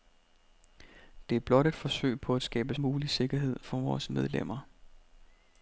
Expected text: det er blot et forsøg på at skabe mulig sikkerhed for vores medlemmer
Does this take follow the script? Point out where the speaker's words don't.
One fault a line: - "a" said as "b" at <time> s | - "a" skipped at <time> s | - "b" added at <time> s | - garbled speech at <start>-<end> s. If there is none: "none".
none